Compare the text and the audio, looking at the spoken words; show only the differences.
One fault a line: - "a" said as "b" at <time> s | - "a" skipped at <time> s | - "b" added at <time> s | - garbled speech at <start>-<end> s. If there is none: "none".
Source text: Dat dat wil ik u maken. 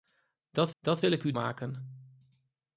none